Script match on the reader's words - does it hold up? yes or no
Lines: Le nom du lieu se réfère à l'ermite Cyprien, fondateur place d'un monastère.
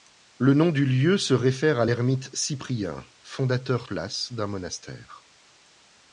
yes